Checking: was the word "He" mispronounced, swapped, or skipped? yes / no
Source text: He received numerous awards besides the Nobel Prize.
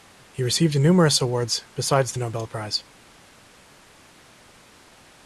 no